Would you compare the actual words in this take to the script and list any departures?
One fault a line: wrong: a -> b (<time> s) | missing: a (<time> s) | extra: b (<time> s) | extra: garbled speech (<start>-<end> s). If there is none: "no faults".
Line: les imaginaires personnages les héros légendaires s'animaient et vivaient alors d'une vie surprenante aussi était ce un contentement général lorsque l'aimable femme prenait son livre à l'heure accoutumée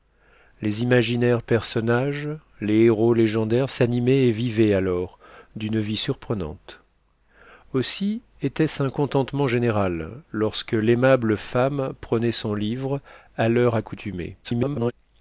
extra: garbled speech (14.4-14.9 s)